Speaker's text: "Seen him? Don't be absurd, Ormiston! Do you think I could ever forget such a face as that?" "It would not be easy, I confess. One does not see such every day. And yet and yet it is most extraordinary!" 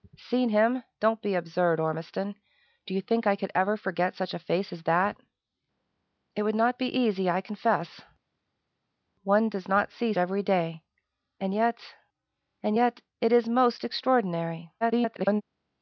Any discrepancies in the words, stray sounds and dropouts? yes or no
yes